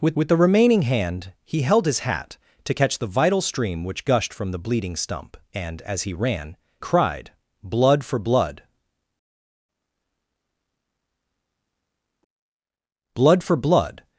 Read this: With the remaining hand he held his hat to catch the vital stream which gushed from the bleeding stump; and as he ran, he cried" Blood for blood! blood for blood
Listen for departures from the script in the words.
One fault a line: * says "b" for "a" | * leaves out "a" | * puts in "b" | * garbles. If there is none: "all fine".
* puts in "with"
* leaves out "he"